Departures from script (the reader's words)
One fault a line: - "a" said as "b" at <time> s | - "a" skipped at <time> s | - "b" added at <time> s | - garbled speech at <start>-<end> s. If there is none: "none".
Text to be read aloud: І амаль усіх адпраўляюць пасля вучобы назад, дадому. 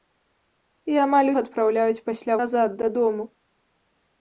- "усіх" skipped at 1.3 s
- "вучобы" skipped at 2.4 s